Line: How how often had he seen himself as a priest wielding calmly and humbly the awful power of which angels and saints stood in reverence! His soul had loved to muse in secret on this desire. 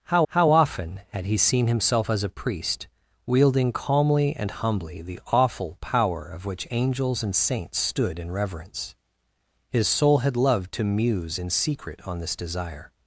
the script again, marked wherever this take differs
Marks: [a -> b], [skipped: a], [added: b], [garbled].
How how often had he seen himself as a priest wielding calmly and humbly the awful power of which angels and saints stood in reverence! His soul had loved to muse in secret on this desire.